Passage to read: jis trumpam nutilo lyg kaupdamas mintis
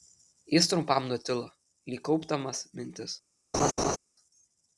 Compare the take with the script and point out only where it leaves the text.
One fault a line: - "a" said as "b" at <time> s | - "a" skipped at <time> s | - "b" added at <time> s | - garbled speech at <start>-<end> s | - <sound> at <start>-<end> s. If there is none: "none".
- laugh at 3.5-4.0 s